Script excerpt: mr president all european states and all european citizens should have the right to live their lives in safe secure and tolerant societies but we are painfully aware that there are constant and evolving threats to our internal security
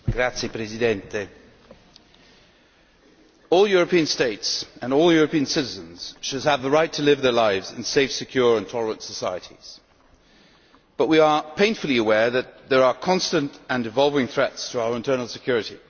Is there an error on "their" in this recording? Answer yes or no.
no